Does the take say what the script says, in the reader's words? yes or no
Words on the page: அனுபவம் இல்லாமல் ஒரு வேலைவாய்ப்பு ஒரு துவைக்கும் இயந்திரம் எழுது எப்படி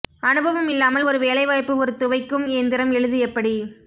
yes